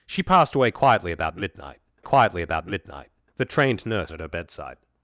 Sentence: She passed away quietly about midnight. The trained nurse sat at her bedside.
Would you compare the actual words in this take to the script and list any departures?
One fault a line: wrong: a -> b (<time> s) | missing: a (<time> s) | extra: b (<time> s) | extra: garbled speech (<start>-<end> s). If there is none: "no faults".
extra: quietly about midnight (2.0 s)
missing: sat (4.1 s)